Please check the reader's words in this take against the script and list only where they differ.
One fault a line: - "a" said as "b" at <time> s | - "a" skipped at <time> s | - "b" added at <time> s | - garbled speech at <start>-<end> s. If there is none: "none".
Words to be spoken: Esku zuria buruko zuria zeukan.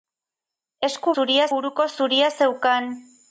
none